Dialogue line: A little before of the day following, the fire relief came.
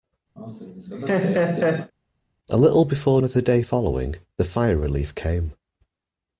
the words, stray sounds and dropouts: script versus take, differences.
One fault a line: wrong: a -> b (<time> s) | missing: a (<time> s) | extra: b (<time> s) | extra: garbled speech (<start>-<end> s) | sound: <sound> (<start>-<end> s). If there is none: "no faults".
sound: laugh (0.4-1.9 s)